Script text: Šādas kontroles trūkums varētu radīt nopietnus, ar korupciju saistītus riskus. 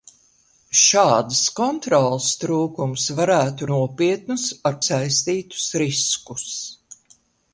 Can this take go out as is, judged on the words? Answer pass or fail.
fail